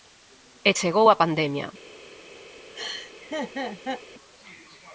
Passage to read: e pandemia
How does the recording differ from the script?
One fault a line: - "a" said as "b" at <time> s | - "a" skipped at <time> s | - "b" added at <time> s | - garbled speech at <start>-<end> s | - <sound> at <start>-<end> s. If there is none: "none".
- "chegou a" added at 0.8 s
- laugh at 2.7-4.0 s